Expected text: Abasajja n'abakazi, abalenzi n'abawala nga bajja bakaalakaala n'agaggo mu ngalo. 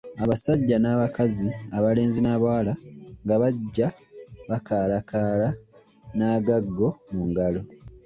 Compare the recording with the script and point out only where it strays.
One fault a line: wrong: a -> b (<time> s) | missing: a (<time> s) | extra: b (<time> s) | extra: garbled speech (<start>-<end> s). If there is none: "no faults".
no faults